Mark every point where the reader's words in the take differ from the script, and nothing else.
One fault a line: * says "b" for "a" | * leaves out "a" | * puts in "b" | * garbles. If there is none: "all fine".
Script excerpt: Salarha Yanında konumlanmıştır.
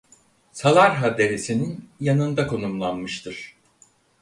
* puts in "Deresi'nin"